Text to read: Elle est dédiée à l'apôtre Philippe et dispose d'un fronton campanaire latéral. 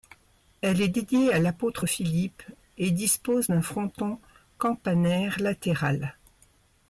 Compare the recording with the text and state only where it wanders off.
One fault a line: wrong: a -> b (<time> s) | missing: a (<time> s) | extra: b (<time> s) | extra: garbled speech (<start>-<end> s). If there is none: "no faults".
no faults